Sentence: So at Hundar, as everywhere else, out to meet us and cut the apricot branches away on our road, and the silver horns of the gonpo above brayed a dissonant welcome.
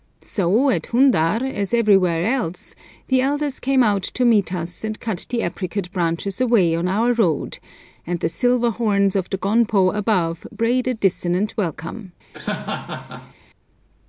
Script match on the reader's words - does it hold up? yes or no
no